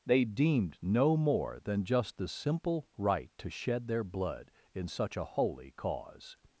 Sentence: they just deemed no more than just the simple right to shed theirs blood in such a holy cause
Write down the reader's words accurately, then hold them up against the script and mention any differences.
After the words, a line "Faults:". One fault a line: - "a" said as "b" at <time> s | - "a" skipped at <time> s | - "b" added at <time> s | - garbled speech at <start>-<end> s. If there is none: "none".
they deemed no more than just the simple right to shed their blood in such a holy cause
Faults:
- "just" skipped at 0.2 s
- "theirs" said as "their" at 3.9 s